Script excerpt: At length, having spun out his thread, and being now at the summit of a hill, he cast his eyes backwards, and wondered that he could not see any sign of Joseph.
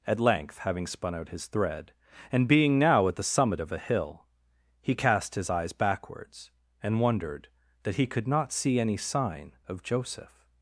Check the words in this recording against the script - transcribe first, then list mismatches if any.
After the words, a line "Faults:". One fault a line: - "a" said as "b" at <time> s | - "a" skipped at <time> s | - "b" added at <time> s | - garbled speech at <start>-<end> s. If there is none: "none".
At length, having spun out his thread, and being now at the summit of a hill, he cast his eyes backwards, and wondered that he could not see any sign of Joseph.
Faults:
none